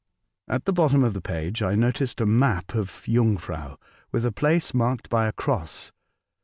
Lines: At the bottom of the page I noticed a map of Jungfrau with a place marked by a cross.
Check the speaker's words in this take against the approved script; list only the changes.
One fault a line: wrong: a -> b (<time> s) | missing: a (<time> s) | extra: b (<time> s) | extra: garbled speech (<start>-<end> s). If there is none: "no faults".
no faults